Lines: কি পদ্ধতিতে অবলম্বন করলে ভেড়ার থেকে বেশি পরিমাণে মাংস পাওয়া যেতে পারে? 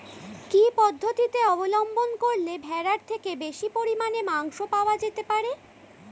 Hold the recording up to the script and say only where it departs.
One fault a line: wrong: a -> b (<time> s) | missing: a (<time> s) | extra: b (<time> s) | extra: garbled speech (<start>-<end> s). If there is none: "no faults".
no faults